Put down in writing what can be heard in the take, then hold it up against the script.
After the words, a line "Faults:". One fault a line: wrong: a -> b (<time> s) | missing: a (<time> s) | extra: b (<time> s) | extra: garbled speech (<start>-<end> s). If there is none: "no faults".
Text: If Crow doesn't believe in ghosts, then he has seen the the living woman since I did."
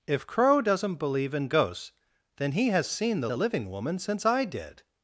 If Crow doesn't believe in ghosts, then he has seen the the living woman since I did."
Faults:
no faults